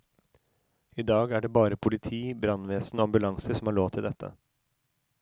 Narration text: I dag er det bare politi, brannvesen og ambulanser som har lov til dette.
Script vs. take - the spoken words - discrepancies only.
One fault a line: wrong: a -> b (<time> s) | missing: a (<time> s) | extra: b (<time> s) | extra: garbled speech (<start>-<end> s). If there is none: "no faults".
no faults